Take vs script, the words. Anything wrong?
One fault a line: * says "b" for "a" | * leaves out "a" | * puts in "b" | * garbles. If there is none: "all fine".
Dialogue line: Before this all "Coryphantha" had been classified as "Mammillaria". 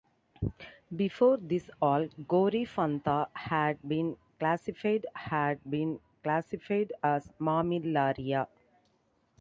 * puts in "had been classified"